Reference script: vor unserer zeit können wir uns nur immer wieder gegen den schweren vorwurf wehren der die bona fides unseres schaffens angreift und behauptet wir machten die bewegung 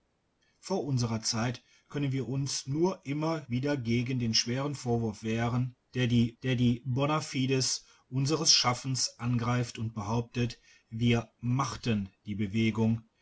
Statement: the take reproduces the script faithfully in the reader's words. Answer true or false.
false